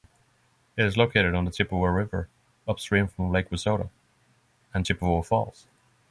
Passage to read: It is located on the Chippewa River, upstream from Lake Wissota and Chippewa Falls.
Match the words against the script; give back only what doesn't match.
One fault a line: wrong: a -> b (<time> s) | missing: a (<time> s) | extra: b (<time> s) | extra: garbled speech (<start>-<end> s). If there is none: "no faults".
no faults